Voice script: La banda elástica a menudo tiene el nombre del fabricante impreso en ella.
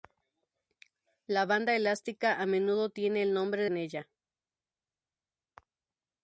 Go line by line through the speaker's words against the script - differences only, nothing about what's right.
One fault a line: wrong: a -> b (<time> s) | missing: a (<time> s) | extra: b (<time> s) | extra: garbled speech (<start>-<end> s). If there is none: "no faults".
missing: del fabricante impreso (3.6 s)